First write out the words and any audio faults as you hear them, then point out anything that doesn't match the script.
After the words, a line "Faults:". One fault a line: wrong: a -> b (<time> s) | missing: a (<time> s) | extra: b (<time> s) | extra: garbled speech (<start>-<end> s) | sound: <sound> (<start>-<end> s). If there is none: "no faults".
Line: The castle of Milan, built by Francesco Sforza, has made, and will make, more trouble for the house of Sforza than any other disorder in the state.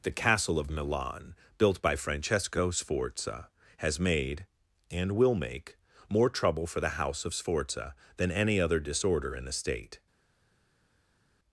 The castle of Milan, built by Francesco Sforza, has made, and will make, more trouble for the house of Sforza than any other disorder in the state.
Faults:
no faults